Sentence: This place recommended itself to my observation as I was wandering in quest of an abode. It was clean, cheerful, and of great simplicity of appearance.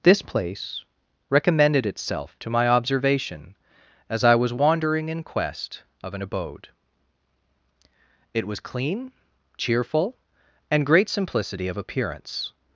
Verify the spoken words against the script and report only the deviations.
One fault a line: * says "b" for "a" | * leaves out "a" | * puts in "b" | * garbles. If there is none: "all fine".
* leaves out "of"